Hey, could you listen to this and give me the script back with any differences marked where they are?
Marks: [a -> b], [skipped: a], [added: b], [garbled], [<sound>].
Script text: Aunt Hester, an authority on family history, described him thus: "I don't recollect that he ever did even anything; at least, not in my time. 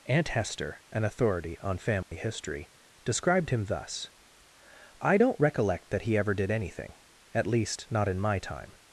Aunt Hester, an authority on family [dropout] history, described him thus: "I don't recollect that he ever did [skipped: even] anything; at least, not in my time.